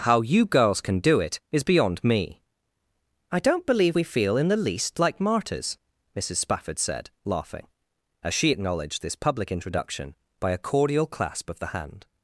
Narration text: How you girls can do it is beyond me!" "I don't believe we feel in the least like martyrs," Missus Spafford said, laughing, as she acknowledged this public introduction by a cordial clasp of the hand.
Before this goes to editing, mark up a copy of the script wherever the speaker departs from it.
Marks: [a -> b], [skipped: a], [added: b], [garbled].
How you girls can do it is beyond me!" "I don't believe we feel in the least like martyrs," Missus Spafford said, laughing, as she acknowledged this public introduction by a cordial clasp of the hand.